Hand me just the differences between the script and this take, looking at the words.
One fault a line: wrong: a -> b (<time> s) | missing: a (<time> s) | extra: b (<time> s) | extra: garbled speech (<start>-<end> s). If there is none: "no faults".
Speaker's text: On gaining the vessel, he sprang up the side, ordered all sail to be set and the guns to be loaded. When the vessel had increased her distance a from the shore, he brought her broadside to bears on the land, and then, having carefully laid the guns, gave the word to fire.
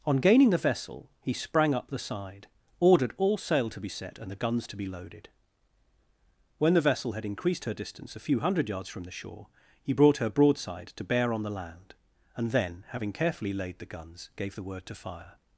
extra: few hundred yards (8.2 s)
wrong: bears -> bear (11.0 s)